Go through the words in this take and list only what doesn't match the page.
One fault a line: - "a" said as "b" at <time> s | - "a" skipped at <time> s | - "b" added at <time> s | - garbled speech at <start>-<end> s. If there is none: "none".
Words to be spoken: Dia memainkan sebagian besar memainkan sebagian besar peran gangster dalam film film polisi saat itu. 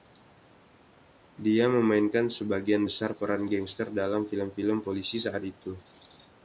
- "memainkan sebagian besar" skipped at 3.2 s